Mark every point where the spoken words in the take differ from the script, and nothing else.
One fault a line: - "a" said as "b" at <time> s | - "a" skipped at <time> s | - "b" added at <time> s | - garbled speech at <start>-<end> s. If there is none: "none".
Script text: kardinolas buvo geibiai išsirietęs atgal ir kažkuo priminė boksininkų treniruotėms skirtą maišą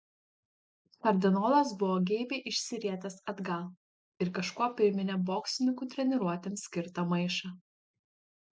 none